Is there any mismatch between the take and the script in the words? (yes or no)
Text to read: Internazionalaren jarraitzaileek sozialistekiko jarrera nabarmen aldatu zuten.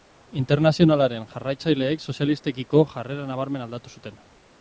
no